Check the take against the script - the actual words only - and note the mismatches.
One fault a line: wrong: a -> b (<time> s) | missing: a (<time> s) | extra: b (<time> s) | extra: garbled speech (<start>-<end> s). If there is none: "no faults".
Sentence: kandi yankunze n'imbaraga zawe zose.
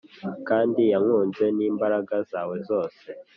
no faults